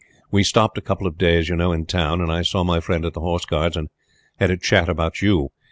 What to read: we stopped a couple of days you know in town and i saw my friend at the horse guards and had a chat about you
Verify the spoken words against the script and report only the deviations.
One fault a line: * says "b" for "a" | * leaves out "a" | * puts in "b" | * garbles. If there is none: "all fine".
all fine